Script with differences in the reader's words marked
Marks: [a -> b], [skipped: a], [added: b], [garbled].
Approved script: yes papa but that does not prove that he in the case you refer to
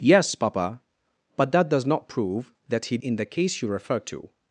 yes papa but that does not prove that he in the case you refer to